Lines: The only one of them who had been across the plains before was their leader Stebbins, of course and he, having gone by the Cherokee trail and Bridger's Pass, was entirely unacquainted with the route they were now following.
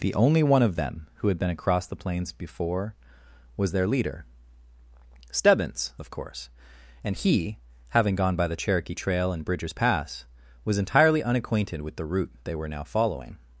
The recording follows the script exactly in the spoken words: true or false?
true